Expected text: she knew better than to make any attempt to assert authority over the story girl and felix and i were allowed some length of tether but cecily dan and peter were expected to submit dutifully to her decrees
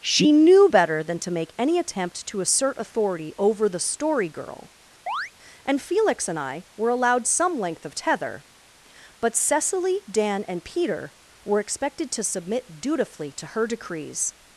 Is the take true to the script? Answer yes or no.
yes